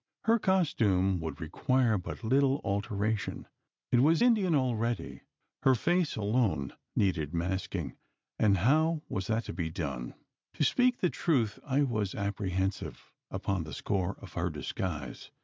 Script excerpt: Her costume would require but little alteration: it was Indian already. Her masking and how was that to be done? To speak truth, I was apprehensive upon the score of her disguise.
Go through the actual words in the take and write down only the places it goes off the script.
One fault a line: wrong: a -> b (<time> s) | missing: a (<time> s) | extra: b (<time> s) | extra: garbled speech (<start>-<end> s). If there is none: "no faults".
extra: face alone needed (5.7 s)
extra: the (11.0 s)